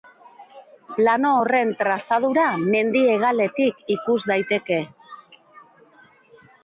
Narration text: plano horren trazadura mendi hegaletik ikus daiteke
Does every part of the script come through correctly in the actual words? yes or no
yes